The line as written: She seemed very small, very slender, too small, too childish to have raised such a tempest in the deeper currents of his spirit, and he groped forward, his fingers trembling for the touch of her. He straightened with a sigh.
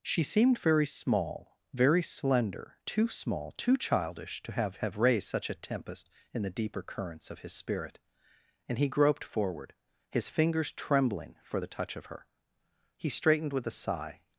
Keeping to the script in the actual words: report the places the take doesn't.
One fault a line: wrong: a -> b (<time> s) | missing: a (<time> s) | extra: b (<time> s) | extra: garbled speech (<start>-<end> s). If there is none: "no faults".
extra: have (4.8 s)